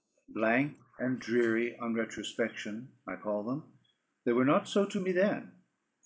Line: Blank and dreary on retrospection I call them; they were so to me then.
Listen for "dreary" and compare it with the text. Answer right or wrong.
right